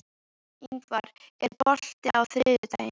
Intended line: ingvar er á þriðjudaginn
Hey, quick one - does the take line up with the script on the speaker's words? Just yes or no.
no